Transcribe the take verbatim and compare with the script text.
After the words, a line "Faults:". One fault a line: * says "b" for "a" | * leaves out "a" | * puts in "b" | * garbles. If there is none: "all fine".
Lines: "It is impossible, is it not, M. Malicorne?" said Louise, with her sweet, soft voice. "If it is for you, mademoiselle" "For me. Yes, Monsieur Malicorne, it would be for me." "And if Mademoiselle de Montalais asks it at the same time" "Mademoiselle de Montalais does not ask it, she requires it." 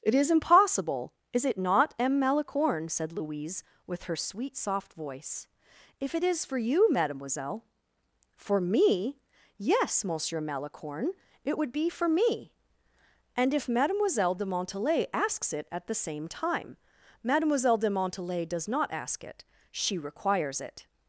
"It is impossible, is it not, M. Malicorne?" said Louise, with her sweet, soft voice. "If it is for you, mademoiselle" "For me. Yes, Monsieur Malicorne, it would be for me." "And if Mademoiselle de Montalais asks it at the same time" "Mademoiselle de Montalais does not ask it, she requires it."
Faults:
all fine